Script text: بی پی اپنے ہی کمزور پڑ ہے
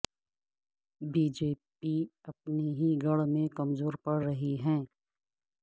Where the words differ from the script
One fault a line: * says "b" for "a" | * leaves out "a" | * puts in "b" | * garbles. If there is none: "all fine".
* puts in "جے"
* puts in "گڑھ میں"
* puts in "رہی"